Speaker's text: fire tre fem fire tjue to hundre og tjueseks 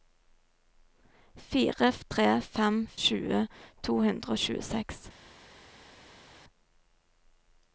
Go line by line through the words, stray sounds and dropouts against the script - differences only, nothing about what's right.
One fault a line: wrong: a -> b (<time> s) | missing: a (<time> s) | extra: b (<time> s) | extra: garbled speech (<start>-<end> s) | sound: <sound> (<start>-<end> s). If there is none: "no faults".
missing: fire (2.8 s)